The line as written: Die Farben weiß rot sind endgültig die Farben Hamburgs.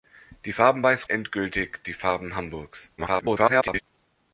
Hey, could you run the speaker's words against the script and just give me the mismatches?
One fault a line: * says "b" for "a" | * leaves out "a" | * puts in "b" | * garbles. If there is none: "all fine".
* leaves out "rot sind"
* garbles